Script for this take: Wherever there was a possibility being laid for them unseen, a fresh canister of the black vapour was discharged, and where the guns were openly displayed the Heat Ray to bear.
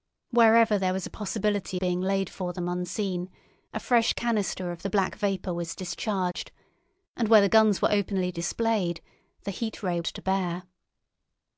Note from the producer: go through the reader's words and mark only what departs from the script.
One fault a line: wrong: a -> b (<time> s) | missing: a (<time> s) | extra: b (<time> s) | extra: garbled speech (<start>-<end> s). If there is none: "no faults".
no faults